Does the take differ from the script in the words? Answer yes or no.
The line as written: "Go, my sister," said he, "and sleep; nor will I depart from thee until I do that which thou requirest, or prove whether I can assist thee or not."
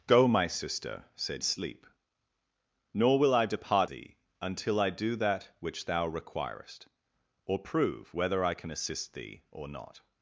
yes